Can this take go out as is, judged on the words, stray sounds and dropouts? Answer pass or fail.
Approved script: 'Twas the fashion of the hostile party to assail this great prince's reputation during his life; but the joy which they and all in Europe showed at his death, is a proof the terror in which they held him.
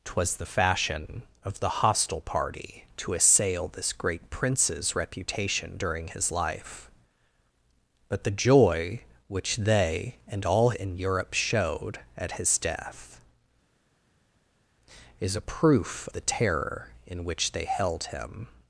pass